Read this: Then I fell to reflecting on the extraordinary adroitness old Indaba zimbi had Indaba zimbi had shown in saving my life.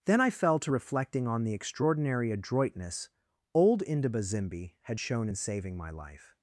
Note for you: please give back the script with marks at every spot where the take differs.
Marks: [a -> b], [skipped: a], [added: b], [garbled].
Then I fell to reflecting on the extraordinary adroitness old Indaba zimbi had [skipped: Indaba zimbi had] shown in saving my life.